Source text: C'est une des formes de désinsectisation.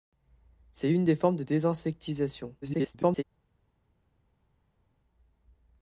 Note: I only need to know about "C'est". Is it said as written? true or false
true